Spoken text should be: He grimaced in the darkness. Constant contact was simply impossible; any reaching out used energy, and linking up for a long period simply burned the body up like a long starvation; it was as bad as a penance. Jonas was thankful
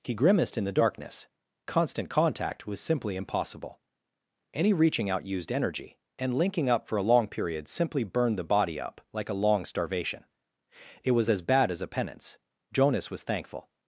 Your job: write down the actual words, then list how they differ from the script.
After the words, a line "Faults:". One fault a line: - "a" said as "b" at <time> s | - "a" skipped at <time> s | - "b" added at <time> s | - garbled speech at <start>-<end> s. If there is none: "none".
He grimaced in the darkness. Constant contact was simply impossible; any reaching out used energy, and linking up for a long period simply burned the body up like a long starvation; it was as bad as a penance. Jonas was thankful
Faults:
none